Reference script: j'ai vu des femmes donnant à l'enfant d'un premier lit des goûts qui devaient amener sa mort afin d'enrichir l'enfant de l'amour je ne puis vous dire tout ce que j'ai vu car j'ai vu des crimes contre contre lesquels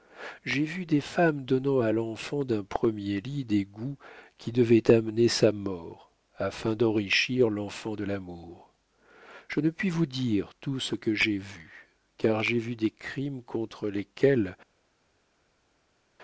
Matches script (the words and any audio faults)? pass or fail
fail